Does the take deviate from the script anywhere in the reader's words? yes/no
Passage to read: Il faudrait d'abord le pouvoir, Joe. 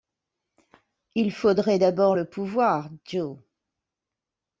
no